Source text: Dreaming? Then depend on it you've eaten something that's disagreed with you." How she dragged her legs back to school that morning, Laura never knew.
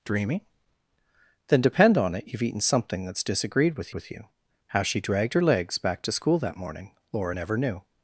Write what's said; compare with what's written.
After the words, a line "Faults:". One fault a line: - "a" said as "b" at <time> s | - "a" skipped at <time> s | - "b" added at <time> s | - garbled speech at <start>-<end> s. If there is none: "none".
Dreaming? Then depend on it you've eaten something that's disagreed with with you." How she dragged her legs back to school that morning, Laura never knew.
Faults:
- "with" added at 3.9 s